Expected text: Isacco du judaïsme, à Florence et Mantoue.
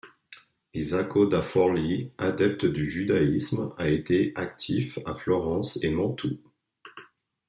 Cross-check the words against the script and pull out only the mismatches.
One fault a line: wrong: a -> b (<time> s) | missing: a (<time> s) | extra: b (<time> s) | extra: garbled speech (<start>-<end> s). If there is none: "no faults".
extra: da Forlì adepte (1.3 s)
extra: a été actif (3.8 s)